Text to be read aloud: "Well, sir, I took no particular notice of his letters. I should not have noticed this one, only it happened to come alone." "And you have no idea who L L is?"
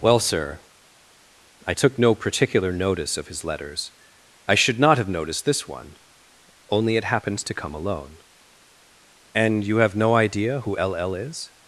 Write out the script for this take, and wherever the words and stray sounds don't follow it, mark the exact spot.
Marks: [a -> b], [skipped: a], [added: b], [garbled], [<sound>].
"Well, sir, I took no particular notice of his letters. I should not have noticed this one, only it [happened -> happens] to come alone." "And you have no idea who L L is?"